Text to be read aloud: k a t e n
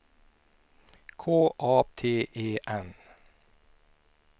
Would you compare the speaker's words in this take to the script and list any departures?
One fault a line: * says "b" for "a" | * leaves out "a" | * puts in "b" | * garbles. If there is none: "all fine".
all fine